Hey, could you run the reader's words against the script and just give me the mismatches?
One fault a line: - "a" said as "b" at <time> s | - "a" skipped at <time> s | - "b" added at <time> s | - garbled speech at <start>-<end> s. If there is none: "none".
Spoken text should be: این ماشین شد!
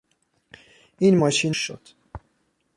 none